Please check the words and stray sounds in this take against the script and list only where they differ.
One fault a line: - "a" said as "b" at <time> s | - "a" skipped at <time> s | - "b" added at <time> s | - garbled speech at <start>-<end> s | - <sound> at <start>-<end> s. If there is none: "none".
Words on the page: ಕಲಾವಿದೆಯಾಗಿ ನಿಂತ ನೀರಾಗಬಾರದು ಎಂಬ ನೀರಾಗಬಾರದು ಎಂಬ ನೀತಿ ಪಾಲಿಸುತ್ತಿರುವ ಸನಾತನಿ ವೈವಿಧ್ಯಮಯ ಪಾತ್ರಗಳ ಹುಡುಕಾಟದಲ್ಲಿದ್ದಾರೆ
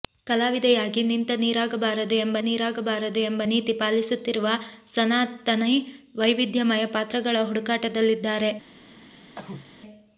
- cough at 9.3-9.7 s